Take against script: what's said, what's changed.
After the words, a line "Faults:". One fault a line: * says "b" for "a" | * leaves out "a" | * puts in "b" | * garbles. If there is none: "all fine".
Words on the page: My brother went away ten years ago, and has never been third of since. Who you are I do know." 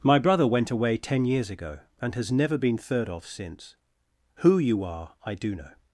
My brother went away ten years ago, and has never been third of since. Who you are I do know."
Faults:
all fine